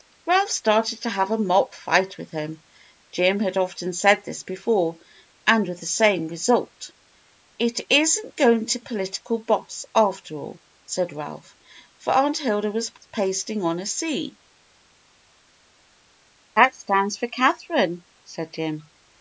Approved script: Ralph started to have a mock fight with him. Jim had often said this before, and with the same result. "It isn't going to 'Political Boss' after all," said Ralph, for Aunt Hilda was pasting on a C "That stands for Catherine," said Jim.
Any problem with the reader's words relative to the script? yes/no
no